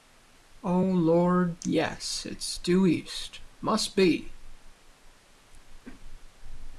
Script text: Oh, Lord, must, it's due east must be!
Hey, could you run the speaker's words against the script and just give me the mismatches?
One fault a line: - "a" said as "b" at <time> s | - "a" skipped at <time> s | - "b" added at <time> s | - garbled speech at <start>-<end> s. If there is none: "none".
- "must" said as "yes" at 1.6 s